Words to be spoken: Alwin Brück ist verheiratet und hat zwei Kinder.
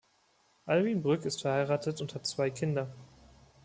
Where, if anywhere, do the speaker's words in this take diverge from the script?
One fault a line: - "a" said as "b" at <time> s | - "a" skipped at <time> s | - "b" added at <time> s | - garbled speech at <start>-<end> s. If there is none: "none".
none